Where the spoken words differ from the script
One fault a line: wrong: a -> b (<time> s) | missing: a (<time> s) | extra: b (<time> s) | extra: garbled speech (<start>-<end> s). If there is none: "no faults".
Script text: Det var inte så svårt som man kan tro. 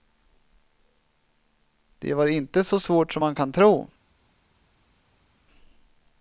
no faults